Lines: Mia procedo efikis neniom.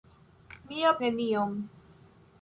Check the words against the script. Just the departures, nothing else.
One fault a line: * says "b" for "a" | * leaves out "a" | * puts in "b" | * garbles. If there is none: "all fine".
* leaves out "procedo efikis"